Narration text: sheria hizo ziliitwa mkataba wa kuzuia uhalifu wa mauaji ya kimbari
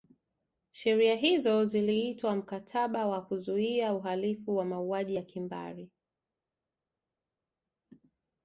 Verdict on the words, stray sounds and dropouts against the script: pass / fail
pass